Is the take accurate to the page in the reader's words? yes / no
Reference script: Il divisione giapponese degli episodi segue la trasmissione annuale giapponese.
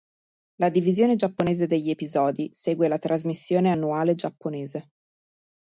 no